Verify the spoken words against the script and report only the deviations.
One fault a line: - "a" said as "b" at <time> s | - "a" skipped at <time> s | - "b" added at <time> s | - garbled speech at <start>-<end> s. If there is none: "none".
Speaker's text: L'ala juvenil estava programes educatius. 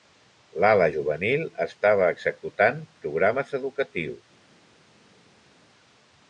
- "executant" added at 2.1 s